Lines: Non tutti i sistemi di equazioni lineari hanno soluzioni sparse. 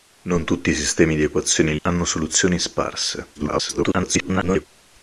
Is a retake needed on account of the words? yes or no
yes